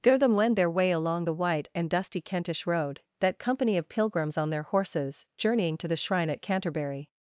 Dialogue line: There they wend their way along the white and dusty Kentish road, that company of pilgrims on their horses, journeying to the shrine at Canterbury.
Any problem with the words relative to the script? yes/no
yes